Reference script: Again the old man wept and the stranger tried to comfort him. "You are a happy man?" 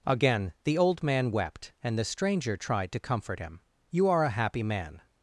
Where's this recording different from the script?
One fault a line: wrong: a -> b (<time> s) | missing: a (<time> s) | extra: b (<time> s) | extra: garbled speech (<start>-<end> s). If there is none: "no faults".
no faults